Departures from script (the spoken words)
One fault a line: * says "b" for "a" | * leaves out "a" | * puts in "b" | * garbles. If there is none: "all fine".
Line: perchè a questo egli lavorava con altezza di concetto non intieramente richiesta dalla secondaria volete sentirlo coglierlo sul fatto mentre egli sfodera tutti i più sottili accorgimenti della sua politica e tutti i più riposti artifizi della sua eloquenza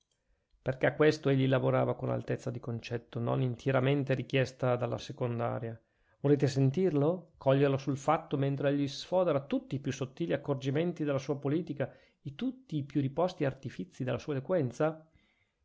all fine